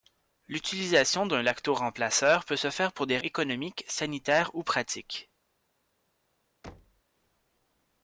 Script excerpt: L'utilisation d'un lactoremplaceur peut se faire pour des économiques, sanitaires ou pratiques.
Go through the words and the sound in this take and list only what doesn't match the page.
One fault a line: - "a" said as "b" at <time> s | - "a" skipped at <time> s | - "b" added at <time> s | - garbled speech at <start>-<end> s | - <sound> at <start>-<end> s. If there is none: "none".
- thud at 6.6-7.0 s